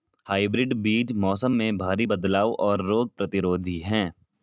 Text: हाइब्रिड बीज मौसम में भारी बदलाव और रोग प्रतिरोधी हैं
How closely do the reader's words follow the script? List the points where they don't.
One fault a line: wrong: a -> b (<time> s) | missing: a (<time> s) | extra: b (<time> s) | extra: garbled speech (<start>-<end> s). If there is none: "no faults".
no faults